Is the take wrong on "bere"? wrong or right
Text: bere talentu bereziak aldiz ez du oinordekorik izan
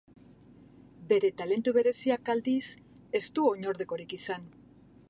right